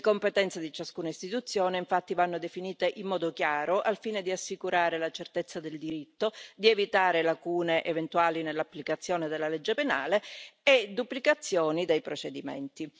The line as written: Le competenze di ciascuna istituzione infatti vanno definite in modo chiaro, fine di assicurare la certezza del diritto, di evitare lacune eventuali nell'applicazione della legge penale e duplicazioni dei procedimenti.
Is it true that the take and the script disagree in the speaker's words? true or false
true